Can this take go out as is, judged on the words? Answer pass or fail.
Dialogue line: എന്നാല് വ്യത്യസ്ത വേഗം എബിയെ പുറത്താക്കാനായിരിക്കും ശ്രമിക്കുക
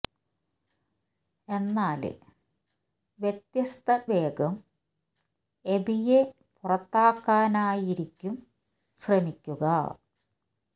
pass